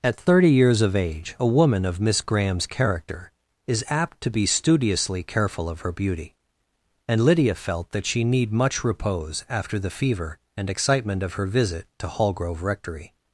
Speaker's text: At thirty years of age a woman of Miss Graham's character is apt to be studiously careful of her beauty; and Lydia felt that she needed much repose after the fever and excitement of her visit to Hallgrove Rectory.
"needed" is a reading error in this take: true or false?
true